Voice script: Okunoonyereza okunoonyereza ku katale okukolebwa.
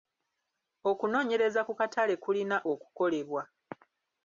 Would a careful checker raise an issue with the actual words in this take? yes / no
yes